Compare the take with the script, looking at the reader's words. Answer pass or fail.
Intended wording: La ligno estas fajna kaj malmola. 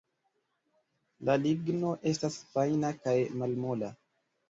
pass